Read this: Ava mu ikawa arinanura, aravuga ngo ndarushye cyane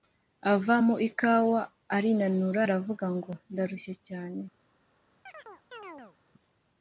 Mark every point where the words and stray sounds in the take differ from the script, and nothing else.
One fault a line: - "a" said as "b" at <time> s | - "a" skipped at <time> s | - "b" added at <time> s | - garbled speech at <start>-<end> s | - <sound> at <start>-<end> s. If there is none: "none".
- chirp at 5.3-6.2 s